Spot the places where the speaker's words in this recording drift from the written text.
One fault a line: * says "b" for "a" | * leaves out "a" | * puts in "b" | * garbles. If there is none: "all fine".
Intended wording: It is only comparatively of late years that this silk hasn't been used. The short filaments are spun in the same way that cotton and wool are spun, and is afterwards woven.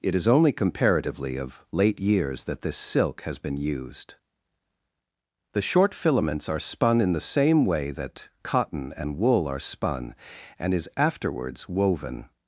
* says "has" for "hasn't"